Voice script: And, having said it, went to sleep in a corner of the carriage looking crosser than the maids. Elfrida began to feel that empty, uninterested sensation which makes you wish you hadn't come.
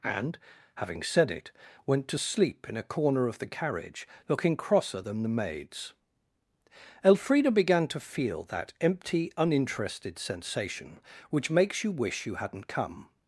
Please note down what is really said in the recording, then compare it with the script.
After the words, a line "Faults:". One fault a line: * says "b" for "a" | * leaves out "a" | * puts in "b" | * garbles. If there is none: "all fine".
And, having said it, went to sleep in a corner of the carriage looking crosser than the maids. Elfrida began to feel that empty, uninterested sensation which makes you wish you hadn't come.
Faults:
all fine